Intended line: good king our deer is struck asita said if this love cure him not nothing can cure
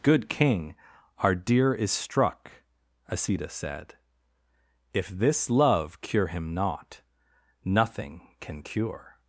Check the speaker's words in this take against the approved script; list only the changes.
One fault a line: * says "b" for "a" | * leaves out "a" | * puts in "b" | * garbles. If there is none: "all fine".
all fine